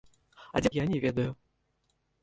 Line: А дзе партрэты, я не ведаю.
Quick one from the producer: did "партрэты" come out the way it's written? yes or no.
no